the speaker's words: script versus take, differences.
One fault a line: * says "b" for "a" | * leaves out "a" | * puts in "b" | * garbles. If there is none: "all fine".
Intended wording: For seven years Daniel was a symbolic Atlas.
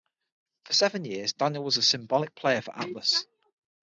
* puts in "player for"